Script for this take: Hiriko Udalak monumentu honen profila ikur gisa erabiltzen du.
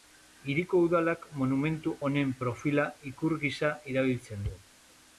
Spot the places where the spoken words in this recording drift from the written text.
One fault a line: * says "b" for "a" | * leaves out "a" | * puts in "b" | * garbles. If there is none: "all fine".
all fine